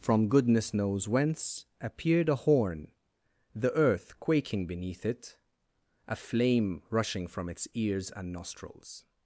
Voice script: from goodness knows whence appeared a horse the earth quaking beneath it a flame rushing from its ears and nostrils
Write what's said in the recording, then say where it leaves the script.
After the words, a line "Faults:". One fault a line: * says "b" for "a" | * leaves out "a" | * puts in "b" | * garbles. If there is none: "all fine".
from goodness knows whence appeared a horn the earth quaking beneath it a flame rushing from its ears and nostrils
Faults:
* says "horn" for "horse"